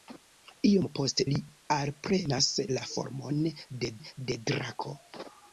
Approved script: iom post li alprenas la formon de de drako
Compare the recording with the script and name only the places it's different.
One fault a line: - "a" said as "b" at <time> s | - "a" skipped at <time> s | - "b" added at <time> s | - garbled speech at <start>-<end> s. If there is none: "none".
none